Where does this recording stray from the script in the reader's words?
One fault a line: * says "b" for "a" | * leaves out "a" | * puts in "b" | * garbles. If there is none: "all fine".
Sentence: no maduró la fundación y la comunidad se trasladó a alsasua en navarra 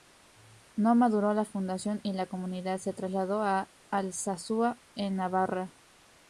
all fine